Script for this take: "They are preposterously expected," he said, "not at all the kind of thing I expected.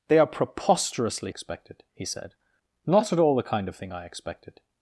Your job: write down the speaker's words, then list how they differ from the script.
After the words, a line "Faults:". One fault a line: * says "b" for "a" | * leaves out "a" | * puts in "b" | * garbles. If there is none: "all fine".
"They are preposterously expected," he said, "not at all the kind of thing I expected.
Faults:
all fine